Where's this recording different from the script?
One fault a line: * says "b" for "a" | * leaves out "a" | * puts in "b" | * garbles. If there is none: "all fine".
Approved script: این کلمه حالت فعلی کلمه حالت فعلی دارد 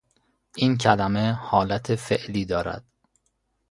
* leaves out "کلمه حالت فعلی"